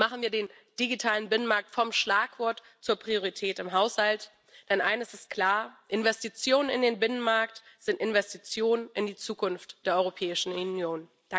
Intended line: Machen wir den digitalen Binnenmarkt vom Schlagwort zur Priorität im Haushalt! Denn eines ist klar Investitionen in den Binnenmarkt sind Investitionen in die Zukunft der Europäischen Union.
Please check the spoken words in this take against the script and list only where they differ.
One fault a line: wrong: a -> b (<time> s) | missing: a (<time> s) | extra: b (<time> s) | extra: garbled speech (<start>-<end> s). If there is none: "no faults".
no faults